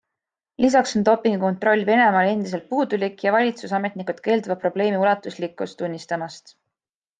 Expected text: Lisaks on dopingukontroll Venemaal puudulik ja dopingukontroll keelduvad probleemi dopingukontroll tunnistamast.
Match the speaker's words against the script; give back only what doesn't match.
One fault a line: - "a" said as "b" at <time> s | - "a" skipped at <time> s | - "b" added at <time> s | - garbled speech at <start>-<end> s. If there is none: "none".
- "endiselt" added at 2.3 s
- "dopingukontroll" said as "valitsusametnikud" at 3.4 s
- "dopingukontroll" said as "ulatuslikkust" at 5.0 s